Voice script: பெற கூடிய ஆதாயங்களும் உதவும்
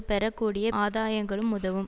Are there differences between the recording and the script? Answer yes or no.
no